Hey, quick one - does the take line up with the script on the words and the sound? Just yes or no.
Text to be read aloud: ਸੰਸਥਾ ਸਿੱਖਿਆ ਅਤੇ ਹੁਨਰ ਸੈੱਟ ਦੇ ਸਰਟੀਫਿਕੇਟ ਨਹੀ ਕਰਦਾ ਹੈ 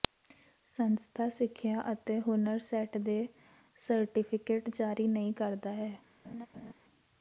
no